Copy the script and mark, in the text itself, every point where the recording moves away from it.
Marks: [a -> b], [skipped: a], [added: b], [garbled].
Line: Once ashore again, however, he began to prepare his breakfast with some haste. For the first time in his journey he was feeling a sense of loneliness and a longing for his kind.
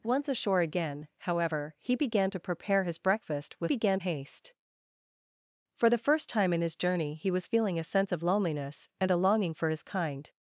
Once ashore again, however, he began to prepare his breakfast with [some -> began] haste. For the first time in his journey he was feeling a sense of loneliness and a longing for his kind.